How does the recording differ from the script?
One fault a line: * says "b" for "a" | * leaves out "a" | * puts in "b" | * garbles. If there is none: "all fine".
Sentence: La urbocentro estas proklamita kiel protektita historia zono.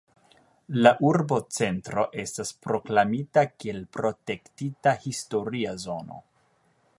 all fine